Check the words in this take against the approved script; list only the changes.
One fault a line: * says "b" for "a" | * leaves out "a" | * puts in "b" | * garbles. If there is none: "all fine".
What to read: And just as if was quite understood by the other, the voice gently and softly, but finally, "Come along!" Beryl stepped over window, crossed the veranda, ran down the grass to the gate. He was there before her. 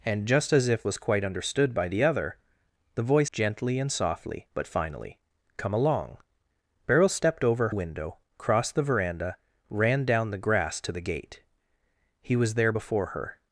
all fine